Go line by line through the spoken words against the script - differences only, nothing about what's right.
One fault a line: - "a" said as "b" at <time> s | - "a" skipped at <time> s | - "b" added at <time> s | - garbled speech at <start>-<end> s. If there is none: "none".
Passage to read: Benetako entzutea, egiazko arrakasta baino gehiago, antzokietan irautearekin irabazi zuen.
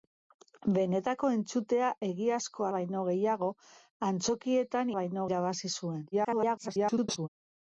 - "arrakasta" skipped at 2.7 s
- "irautearekin" said as "baino" at 5.0 s
- garbled speech at 6.1-7.3 s